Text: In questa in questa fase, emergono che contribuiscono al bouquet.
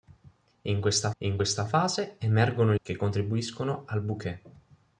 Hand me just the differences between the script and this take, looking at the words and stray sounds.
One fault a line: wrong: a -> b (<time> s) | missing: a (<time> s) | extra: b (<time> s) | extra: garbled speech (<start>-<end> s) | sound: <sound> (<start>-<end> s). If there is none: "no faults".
no faults